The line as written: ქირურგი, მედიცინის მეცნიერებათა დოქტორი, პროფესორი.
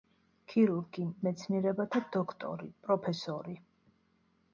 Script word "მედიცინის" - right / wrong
wrong